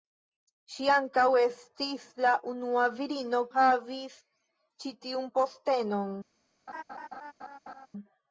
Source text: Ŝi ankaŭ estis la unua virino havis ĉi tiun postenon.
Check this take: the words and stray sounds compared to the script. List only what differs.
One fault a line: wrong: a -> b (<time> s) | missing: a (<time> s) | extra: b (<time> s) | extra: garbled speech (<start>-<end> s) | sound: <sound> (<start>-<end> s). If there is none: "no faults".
sound: laugh (6.7-7.9 s)